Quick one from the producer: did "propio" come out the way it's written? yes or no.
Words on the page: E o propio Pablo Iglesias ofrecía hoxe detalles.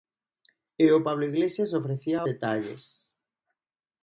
no